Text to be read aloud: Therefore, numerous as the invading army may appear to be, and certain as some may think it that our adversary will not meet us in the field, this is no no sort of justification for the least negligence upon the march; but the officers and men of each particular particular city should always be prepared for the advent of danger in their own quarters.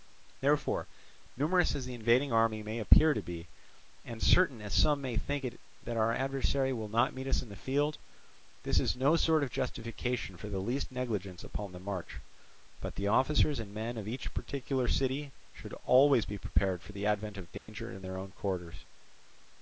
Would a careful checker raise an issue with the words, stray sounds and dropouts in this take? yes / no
yes